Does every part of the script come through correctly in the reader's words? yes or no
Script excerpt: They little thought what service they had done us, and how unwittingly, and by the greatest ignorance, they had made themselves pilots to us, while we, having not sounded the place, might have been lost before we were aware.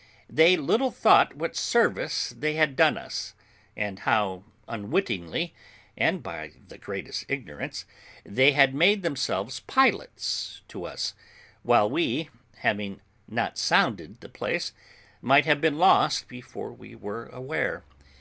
yes